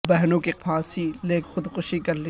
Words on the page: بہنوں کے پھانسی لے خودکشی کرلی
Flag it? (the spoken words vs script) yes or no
no